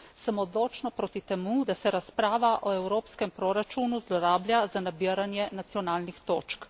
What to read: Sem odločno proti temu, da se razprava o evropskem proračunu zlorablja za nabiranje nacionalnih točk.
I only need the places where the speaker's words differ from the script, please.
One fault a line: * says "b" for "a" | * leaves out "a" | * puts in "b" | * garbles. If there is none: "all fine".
all fine